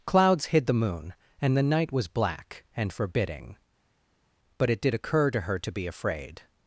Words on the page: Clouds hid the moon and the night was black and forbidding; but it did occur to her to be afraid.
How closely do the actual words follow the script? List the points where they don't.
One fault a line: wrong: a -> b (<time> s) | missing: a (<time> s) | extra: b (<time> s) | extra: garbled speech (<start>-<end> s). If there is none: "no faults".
no faults